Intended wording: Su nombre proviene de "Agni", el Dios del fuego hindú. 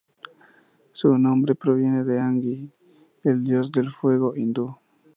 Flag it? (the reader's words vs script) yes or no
no